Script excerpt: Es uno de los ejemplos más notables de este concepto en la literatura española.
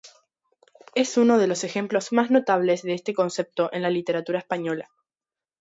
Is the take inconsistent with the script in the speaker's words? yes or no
no